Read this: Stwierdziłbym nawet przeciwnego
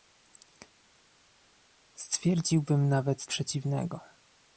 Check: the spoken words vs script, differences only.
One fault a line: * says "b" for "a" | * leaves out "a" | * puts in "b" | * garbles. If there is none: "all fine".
all fine